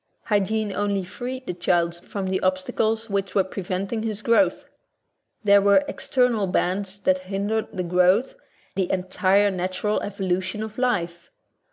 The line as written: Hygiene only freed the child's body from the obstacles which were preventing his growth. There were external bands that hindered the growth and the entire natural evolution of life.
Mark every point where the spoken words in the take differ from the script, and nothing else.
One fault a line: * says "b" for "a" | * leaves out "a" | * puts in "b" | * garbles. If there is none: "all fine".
* leaves out "body"
* leaves out "and"